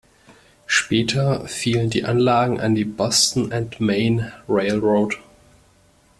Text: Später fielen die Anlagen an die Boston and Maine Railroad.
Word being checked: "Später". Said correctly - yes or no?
yes